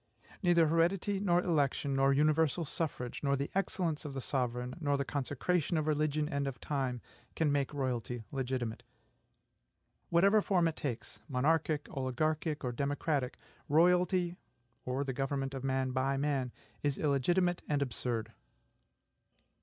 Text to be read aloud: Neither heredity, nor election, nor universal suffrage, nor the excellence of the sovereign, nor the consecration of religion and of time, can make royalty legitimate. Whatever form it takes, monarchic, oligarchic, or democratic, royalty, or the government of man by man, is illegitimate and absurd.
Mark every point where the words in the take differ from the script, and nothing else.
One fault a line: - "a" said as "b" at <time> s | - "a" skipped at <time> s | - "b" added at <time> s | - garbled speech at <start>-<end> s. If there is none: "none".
none